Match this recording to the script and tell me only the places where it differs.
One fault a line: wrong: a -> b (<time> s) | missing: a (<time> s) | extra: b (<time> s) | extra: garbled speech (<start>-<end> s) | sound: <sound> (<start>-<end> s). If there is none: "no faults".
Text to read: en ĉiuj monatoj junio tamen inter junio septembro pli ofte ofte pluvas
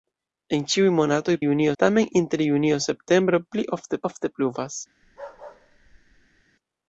sound: bark (5.0-6.4 s)